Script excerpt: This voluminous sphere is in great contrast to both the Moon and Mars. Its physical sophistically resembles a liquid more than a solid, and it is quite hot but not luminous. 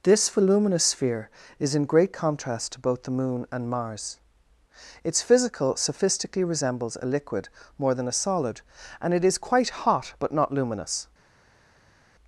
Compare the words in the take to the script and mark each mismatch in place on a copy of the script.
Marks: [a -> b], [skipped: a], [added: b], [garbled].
This voluminous sphere is in great contrast to both the Moon and Mars. Its physical sophistically resembles a liquid more than a solid, and it is quite hot but not luminous.